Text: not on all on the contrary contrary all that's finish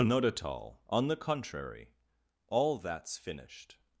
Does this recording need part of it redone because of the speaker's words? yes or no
yes